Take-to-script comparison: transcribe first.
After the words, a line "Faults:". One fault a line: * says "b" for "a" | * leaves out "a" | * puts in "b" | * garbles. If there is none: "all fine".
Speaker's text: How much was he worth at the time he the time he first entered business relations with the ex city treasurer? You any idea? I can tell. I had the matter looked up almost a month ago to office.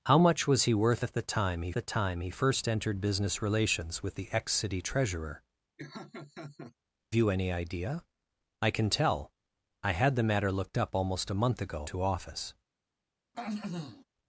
How much was he worth at the time he the time he first entered business relations with the ex city treasurer? You any idea? I can tell. I had the matter looked up almost a month ago to office.
Faults:
all fine